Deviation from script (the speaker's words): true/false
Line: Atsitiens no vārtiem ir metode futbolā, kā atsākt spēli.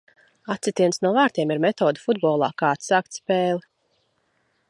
false